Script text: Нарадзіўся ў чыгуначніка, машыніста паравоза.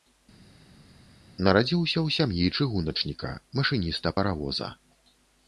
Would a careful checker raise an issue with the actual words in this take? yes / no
yes